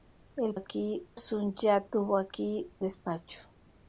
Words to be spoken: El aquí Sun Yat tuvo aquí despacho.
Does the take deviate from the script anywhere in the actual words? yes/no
no